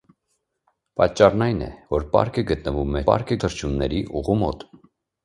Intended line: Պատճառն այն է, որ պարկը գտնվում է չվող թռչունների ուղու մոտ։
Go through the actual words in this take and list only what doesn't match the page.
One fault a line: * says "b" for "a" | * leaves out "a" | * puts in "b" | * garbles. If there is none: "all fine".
* says "պարկը" for "չվող"